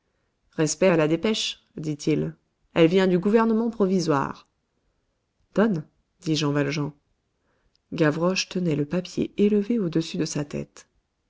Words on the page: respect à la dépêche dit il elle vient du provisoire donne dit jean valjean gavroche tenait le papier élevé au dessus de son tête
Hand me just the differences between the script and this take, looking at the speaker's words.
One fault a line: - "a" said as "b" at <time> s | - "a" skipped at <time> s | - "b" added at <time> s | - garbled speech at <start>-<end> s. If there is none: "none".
- "gouvernement" added at 3.2 s
- "son" said as "sa" at 10.2 s